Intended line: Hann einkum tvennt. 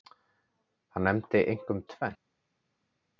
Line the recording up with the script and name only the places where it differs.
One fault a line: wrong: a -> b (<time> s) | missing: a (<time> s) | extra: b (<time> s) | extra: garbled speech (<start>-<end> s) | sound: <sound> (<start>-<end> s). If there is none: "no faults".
extra: nefndi (1.0 s)